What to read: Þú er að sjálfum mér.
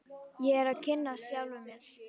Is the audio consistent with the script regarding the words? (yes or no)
no